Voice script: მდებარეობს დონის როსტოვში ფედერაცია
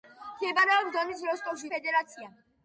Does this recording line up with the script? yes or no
yes